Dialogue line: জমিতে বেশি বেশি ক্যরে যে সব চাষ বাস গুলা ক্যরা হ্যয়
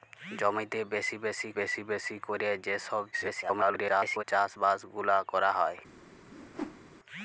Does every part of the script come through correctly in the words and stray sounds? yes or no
no